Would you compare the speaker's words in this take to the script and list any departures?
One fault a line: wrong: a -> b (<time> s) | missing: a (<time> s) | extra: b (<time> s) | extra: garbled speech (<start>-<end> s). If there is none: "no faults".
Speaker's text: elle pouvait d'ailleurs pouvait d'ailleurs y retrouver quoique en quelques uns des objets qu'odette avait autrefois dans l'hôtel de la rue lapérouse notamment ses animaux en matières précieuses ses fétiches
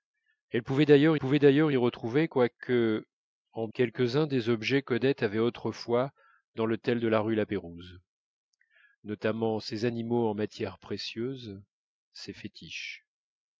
no faults